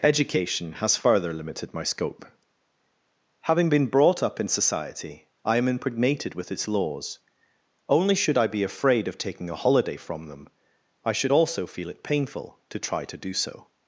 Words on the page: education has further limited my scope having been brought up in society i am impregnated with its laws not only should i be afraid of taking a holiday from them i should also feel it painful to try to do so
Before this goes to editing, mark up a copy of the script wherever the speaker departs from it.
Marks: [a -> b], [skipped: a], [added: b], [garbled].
education has further limited my scope having been brought up in society i am impregnated with its laws [skipped: not] only should i be afraid of taking a holiday from them i should also feel it painful to try to do so